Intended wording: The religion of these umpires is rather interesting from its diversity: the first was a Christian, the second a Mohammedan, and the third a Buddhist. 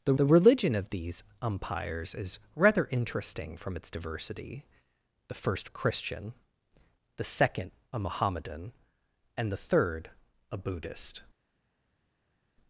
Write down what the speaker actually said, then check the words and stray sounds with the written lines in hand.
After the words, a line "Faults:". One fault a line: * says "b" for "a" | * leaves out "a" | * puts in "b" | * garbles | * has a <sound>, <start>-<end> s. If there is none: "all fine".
The the religion of these umpires is rather interesting from its diversity: the first a Christian, the second a Mohammedan, and the third a Buddhist.
Faults:
* puts in "the"
* leaves out "was"